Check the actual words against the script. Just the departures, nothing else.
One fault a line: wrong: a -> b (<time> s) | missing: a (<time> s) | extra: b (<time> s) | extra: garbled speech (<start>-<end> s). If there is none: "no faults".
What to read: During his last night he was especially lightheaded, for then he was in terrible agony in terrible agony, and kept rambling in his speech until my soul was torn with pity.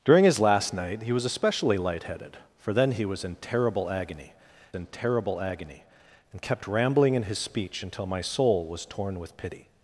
no faults